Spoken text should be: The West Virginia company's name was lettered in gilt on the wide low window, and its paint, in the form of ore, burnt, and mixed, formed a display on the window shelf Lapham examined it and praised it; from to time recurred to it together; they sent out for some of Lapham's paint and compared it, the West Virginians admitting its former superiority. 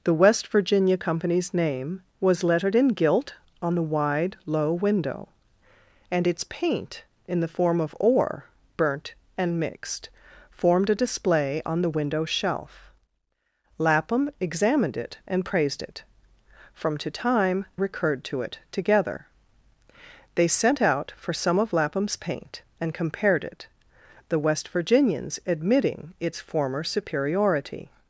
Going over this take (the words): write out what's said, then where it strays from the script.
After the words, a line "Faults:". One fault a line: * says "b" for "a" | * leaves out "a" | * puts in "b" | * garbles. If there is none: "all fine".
The West Virginia company's name was lettered in gilt on the wide low window, and its paint, in the form of ore, burnt, and mixed, formed a display on the window shelf Lapham examined it and praised it; from to time recurred to it together; they sent out for some of Lapham's paint and compared it, the West Virginians admitting its former superiority.
Faults:
all fine